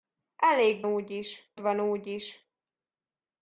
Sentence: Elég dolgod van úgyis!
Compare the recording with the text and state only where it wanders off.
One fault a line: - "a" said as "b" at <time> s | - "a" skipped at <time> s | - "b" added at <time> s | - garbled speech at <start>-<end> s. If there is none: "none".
- "dolgod" said as "úgyis" at 0.8 s